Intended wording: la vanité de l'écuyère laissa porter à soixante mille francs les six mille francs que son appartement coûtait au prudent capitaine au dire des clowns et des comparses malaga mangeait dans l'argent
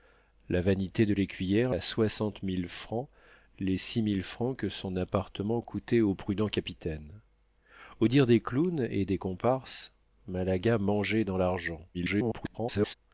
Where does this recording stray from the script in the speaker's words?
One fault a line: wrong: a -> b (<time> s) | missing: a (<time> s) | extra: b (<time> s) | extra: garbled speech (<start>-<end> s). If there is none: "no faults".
missing: laissa porter (1.8 s)
extra: garbled speech (11.9-12.9 s)